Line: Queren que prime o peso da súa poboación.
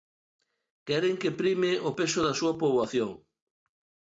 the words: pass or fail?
pass